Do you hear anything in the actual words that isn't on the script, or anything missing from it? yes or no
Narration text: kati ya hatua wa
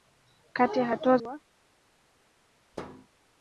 no